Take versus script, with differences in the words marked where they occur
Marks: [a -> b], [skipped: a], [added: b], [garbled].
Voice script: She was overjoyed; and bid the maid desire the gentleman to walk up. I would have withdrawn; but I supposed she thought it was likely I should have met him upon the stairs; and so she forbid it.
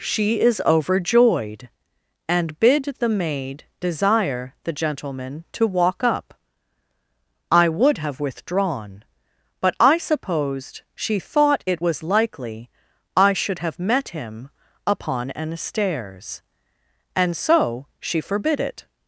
She [was -> is] overjoyed; and bid the maid desire the gentleman to walk up. I would have withdrawn; but I supposed she thought it was likely I should have met him upon [the -> an] stairs; and so she forbid it.